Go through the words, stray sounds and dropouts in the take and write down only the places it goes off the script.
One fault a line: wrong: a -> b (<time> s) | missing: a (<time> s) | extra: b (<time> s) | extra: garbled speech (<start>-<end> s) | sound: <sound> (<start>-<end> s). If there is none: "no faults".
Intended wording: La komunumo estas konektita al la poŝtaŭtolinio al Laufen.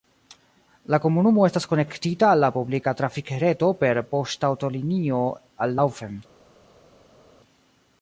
extra: publika trafikreto per (2.5 s)